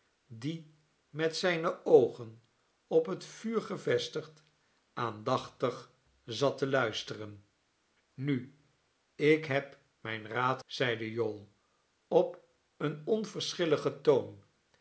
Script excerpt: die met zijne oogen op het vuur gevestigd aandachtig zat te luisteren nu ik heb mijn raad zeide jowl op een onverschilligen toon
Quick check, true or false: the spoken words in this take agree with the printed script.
true